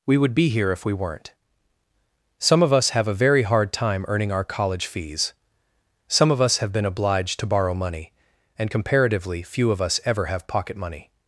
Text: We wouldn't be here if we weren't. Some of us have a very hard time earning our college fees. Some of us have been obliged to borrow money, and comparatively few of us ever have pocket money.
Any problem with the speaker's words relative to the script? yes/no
yes